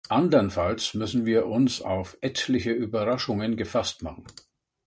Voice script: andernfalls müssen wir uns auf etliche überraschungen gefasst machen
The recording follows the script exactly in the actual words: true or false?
true